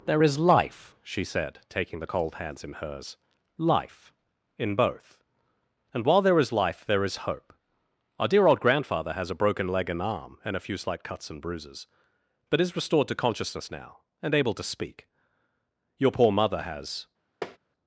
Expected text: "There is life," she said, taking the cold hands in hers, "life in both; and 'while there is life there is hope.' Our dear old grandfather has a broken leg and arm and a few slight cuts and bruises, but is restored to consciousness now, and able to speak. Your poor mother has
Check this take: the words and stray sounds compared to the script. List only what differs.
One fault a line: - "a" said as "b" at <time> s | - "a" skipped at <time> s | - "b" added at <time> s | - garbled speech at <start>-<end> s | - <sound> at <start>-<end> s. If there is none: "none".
- tap at 17.4-17.6 s